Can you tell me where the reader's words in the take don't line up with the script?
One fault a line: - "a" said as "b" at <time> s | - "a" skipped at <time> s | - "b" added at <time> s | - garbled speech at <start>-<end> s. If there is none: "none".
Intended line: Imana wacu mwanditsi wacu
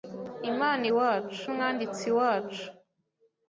none